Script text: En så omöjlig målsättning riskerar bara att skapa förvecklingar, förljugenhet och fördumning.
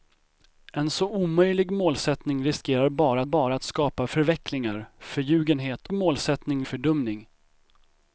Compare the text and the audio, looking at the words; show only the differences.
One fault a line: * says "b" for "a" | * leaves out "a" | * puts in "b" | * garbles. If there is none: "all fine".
* puts in "bara"
* says "målsättning" for "och"